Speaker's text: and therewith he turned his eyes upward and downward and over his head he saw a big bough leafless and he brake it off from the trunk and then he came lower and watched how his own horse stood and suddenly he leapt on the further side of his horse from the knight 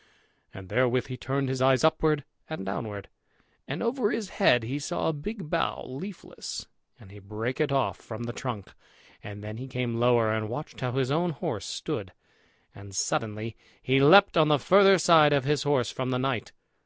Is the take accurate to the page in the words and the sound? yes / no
yes